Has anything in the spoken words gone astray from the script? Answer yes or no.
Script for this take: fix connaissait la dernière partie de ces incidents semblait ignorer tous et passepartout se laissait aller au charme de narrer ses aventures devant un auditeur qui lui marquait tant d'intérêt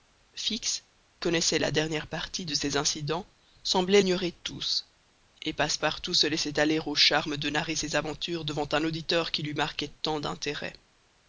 no